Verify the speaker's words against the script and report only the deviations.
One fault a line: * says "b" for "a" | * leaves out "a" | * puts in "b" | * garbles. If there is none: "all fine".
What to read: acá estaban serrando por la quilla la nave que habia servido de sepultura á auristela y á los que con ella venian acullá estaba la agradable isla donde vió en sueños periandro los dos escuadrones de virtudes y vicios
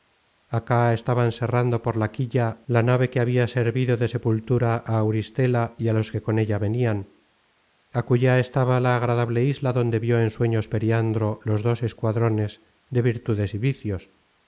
all fine